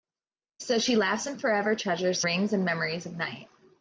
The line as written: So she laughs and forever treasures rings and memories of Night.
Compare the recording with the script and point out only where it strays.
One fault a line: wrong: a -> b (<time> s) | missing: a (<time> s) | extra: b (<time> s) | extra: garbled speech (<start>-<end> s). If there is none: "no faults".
no faults